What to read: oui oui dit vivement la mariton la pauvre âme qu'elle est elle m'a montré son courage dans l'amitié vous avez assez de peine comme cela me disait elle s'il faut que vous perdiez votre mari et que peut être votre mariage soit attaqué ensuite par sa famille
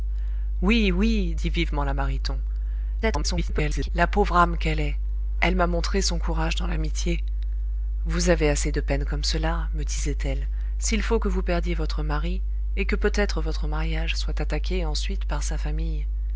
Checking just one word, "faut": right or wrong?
right